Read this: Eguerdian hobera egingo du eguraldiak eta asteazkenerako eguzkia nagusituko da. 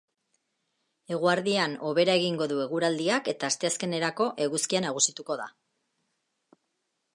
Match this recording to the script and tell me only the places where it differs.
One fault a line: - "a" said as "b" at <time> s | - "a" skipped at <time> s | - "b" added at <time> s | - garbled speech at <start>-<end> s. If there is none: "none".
none